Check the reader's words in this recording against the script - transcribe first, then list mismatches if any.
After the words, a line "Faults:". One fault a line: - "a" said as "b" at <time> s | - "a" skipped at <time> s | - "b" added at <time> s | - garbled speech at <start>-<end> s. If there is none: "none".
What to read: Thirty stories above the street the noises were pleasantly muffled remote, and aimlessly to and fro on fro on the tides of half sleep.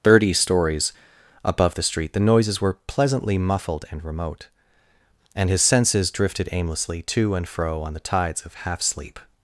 Thirty stories above the street the noises were pleasantly muffled and remote, and his senses drifted aimlessly to and fro on the tides of half sleep.
Faults:
- "and" added at 3.9 s
- "his senses drifted" added at 5.5 s
- "fro on" skipped at 7.9 s